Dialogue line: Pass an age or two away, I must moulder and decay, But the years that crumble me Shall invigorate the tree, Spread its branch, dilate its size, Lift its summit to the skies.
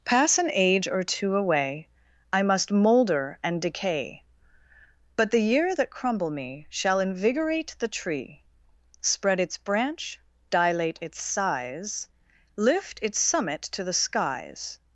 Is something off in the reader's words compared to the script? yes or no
yes